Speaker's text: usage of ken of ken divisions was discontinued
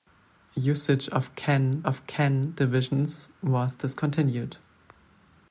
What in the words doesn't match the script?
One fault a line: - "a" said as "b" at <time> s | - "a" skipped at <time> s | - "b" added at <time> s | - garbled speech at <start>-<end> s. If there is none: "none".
none